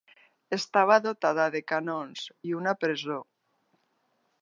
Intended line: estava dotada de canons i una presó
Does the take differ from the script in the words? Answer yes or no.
no